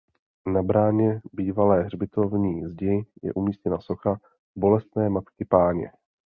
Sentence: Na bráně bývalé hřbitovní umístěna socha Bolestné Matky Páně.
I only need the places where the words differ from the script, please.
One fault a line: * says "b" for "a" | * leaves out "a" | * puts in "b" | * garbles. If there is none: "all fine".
* puts in "zdi je"